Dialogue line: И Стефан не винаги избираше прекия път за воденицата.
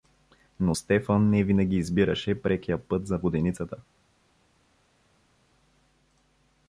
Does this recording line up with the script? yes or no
no